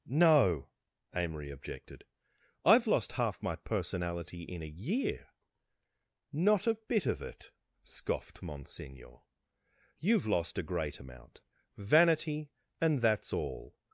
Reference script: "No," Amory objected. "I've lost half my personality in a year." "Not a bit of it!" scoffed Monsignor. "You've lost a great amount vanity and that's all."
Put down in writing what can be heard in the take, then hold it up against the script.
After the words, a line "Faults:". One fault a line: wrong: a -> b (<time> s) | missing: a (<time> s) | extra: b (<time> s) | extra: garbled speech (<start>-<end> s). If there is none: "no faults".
"No," Amory objected. "I've lost half my personality in a year." "Not a bit of it!" scoffed Monsignor. "You've lost a great amount vanity and that's all."
Faults:
no faults